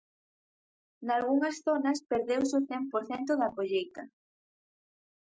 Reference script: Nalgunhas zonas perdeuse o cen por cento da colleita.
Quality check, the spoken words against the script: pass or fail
pass